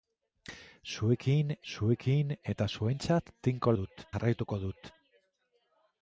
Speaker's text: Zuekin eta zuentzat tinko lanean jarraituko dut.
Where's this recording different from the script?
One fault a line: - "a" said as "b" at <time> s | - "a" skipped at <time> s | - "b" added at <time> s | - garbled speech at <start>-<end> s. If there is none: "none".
- "zuekin" added at 1.7 s
- "lanean" said as "dut" at 3.8 s